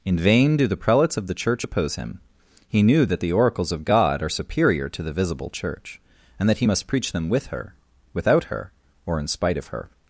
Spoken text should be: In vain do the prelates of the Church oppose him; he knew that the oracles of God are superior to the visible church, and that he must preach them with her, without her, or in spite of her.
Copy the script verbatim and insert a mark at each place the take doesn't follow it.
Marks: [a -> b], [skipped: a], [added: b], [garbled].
In vain do the prelates of the Church oppose him; he knew that the oracles of God are superior to the visible church, and that he must preach them with her, without her, or in spite of her.